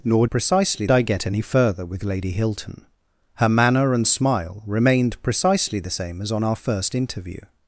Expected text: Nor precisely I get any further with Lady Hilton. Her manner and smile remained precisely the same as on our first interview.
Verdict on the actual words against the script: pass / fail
pass